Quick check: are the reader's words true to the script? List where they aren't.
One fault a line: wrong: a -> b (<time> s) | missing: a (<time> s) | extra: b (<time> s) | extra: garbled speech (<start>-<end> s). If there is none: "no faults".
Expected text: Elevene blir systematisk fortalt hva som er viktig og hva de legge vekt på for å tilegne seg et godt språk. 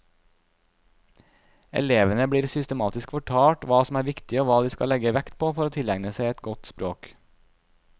extra: skal (4.7 s)